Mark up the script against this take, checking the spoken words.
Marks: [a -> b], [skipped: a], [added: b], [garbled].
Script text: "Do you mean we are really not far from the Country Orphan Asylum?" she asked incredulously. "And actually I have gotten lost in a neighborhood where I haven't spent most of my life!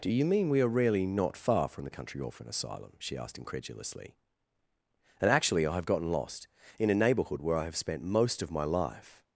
"Do you mean we are really not far from the Country Orphan Asylum?" she asked incredulously. "And actually I have gotten lost in a neighborhood where I [haven't -> have] spent most of my life!